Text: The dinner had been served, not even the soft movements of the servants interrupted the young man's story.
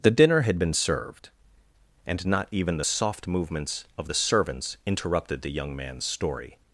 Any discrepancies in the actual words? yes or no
yes